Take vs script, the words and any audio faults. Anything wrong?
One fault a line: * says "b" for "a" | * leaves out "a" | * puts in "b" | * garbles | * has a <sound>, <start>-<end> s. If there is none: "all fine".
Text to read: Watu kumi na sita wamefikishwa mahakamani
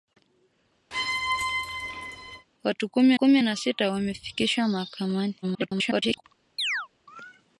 * has a squeak, 0.9-2.5 s
* puts in "kumi"
* garbles
* has a chirp, 6.6-6.9 s